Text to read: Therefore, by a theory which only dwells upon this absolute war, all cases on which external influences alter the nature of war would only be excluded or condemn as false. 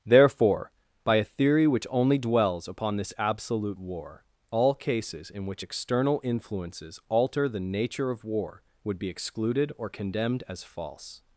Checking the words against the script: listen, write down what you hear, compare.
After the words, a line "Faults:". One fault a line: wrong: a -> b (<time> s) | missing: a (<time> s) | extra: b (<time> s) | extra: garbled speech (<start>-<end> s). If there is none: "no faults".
Therefore, by a theory which only dwells upon this absolute war, all cases in which external influences alter the nature of war would be excluded or condemned as false.
Faults:
wrong: on -> in (5.3 s)
missing: only (9.0 s)
wrong: condemn -> condemned (9.9 s)